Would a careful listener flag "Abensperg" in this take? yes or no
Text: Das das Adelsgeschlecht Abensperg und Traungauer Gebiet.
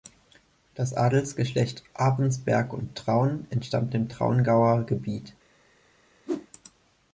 no